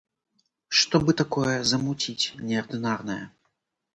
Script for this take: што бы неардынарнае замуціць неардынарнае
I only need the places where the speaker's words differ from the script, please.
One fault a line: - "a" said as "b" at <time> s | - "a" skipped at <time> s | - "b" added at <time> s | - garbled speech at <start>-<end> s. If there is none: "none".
- "неардынарнае" said as "такое" at 1.2 s